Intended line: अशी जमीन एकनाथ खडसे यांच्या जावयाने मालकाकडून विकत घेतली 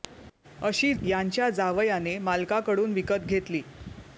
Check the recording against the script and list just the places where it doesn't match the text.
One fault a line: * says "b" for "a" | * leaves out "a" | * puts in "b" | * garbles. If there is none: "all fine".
* leaves out "जमीन एकनाथ खडसे"